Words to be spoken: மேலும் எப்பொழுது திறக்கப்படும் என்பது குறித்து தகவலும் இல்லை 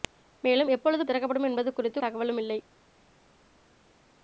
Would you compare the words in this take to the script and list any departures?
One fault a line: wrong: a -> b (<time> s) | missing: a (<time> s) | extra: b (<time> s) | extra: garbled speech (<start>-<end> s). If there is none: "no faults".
no faults